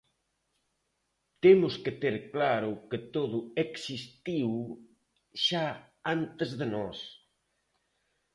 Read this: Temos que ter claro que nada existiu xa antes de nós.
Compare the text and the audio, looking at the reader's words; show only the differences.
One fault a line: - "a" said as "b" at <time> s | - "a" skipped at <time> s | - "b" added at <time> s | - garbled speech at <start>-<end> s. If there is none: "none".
- "nada" said as "todo" at 3.2 s